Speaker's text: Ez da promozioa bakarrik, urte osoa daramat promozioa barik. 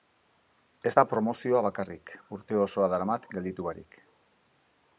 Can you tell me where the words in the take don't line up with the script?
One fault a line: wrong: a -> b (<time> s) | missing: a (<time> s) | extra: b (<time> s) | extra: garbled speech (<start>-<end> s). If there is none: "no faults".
wrong: promozioa -> gelditu (3.3 s)